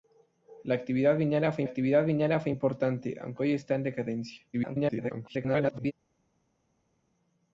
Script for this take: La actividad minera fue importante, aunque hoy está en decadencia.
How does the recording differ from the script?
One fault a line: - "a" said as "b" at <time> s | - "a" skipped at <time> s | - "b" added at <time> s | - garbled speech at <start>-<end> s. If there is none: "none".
- "actividad minera fue" added at 1.6 s
- garbled speech at 4.5-5.9 s